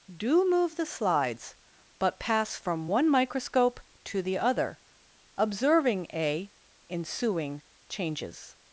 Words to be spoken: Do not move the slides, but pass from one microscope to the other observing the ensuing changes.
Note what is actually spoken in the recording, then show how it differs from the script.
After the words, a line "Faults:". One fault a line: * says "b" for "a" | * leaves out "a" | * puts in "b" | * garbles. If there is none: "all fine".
Do move the slides, but pass from one microscope to the other observing a ensuing changes.
Faults:
* leaves out "not"
* says "a" for "the"